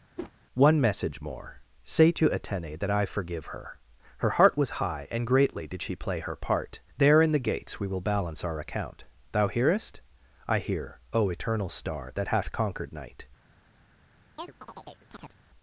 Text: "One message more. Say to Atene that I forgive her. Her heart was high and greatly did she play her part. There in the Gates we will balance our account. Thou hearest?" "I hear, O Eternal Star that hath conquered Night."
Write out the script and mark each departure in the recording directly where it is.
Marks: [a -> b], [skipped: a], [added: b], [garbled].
"One message more. Say to Atene that I forgive her. Her heart was high and greatly did she play her part. There in the Gates we will balance our account. Thou hearest?" "I hear, O Eternal Star that hath conquered Night."